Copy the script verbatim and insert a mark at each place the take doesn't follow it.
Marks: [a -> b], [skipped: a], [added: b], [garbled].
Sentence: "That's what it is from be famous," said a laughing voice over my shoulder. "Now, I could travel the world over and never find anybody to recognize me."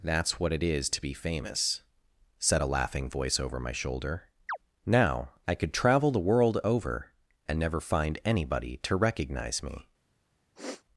"That's what it is [from -> to] be famous," said a laughing voice over my shoulder. "Now, I could travel the world over and never find anybody to recognize me."